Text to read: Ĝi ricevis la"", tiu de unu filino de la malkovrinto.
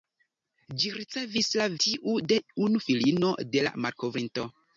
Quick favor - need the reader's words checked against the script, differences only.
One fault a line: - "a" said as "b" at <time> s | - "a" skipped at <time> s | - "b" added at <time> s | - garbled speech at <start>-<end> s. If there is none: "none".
none